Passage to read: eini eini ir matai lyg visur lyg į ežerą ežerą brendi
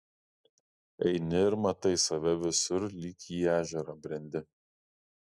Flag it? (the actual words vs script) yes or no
yes